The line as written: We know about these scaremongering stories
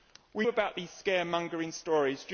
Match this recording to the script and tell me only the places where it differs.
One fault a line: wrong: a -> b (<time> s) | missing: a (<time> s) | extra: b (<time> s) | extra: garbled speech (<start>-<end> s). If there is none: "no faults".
missing: know (0.5 s)